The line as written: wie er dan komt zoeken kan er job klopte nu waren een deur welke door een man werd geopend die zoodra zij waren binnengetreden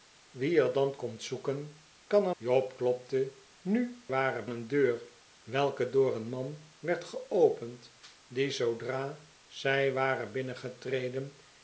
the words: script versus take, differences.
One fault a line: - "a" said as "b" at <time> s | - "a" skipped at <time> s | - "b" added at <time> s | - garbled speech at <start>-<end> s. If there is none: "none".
none